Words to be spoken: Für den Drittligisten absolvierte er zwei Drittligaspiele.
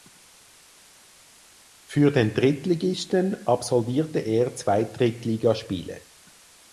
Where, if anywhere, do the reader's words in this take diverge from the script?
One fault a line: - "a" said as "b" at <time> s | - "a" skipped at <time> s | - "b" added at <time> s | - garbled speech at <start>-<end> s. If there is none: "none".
none